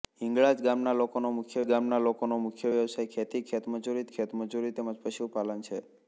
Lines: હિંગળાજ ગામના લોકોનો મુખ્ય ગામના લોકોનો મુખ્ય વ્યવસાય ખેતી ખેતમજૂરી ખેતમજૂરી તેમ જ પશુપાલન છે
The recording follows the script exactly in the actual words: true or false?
true